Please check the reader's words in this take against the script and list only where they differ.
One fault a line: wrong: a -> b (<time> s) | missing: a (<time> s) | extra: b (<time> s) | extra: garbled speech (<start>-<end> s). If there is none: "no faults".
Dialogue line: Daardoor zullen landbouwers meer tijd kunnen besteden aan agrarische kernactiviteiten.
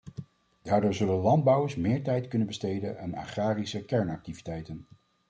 no faults